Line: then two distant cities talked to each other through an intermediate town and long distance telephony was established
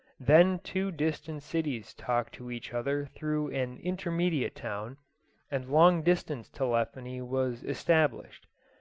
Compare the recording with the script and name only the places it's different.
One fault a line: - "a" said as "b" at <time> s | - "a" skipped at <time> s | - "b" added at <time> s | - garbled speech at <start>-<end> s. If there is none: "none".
none